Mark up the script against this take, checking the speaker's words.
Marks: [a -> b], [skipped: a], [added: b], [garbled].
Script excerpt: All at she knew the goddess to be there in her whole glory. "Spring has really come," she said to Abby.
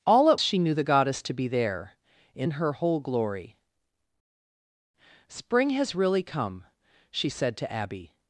All at she knew the goddess to be there in her whole glory. "Spring has really come," she said to Abby.